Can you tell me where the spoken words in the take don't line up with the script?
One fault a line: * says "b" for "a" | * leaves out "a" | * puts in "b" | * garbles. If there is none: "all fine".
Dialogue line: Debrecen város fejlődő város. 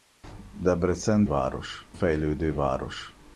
all fine